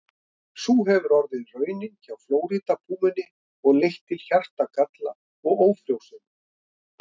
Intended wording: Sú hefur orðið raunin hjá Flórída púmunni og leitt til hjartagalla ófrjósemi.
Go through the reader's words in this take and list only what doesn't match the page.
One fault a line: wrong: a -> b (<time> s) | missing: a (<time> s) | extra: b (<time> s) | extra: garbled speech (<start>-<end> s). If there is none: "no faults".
extra: og (5.5 s)